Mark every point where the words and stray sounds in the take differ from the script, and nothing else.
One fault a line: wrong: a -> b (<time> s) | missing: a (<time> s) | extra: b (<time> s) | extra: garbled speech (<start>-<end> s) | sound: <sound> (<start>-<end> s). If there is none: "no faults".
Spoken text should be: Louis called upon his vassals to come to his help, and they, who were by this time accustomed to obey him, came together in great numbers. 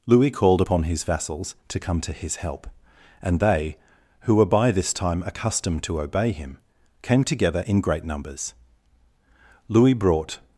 extra: Louis brought (9.7 s)